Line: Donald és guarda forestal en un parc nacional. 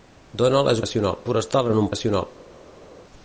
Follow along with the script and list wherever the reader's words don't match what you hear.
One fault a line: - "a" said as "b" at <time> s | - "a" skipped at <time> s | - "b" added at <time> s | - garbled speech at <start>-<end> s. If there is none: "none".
- "guarda" said as "nacional" at 0.8 s
- "parc" skipped at 1.9 s